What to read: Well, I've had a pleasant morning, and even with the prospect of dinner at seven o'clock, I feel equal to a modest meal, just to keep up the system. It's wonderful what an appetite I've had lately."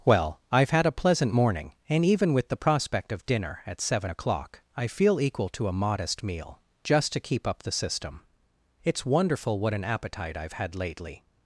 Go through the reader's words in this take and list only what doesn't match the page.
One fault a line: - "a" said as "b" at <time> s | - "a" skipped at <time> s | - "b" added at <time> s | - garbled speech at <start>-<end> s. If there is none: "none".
none